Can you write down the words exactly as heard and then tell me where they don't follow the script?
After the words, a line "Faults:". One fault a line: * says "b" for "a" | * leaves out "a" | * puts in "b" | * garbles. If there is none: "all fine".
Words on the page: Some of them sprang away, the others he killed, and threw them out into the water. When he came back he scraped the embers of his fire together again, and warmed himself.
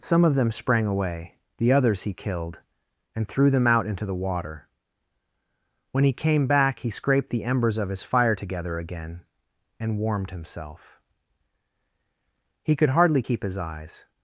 Some of them sprang away, the others he killed, and threw them out into the water. When he came back he scraped the embers of his fire together again, and warmed himself. He could hardly keep his eyes
Faults:
* puts in "He could hardly keep his eyes"